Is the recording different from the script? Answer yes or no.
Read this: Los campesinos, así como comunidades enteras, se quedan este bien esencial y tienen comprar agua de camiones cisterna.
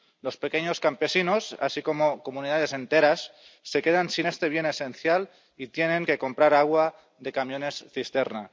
yes